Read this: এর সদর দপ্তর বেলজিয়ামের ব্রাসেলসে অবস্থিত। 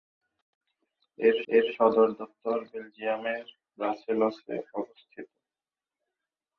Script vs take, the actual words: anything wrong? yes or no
yes